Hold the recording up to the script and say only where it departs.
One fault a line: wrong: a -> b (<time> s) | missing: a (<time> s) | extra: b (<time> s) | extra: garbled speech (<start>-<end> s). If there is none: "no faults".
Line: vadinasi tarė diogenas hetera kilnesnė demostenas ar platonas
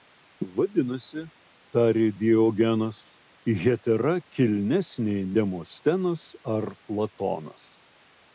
no faults